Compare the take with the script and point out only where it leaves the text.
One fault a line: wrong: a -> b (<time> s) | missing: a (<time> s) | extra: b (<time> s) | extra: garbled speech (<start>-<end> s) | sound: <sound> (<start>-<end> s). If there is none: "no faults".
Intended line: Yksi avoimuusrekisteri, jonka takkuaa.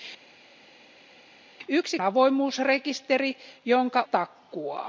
no faults